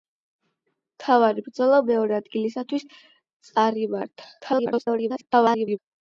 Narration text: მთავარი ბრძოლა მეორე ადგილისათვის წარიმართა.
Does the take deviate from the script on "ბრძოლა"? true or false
false